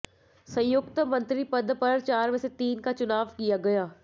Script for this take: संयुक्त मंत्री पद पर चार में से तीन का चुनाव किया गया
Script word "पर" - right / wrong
right